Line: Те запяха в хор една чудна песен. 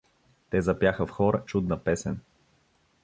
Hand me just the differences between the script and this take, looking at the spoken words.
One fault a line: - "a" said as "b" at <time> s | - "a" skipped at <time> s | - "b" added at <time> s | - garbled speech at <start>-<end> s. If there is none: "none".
- "една" skipped at 1.4 s